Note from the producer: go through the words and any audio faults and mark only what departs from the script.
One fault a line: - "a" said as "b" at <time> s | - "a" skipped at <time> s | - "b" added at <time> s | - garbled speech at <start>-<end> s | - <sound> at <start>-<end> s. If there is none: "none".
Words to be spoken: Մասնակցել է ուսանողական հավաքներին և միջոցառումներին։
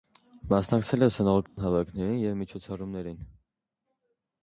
- dropout at 1.5-1.6 s